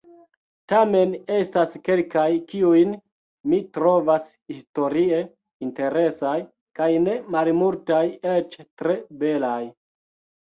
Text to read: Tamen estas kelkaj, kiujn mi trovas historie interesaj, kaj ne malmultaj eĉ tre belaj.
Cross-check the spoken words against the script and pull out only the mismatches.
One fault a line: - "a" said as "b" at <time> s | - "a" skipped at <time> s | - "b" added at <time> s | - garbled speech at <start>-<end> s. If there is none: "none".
none